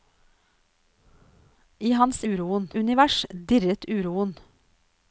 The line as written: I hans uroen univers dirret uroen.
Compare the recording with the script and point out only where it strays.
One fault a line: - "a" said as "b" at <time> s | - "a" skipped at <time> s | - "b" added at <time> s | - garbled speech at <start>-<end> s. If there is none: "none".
none